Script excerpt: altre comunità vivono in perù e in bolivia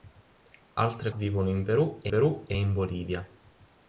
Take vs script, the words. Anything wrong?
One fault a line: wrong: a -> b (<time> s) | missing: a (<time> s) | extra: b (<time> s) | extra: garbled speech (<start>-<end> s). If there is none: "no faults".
missing: comunità (1.1 s)
extra: perù e (2.1 s)